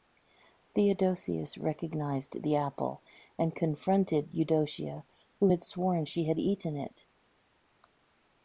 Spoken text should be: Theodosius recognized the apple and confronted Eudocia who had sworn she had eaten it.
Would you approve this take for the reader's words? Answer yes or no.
yes